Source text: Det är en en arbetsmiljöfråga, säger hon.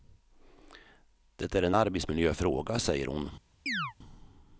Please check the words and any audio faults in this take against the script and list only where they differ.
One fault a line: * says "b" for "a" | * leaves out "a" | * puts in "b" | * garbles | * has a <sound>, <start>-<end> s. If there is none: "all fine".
* leaves out "en"
* has a chirp, 3.7-3.9 s